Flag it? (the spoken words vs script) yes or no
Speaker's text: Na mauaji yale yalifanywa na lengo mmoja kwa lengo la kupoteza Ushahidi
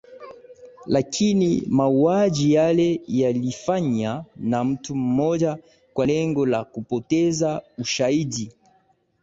yes